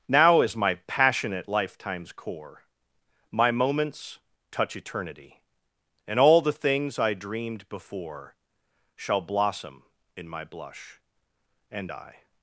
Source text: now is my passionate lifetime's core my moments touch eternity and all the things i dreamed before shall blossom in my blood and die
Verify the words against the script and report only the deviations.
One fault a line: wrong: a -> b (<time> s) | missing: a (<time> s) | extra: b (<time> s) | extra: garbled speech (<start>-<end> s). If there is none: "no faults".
wrong: blood -> blush (10.4 s)